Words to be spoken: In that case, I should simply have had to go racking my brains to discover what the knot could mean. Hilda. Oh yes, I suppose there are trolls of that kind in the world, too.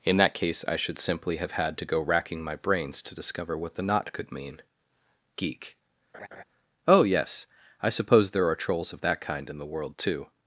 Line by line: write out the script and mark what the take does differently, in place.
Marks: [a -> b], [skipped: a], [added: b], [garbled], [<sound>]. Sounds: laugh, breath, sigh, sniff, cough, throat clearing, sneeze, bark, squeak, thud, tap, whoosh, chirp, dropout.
In that case, I should simply have had to go racking my brains to discover what the knot could mean. [Hilda. -> Geek] [laugh] Oh yes, I suppose there are trolls of that kind in the world, too.